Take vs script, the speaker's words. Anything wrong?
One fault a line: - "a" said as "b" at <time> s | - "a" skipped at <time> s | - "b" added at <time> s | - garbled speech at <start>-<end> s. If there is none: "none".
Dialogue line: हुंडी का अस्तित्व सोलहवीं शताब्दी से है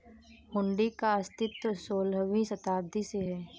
none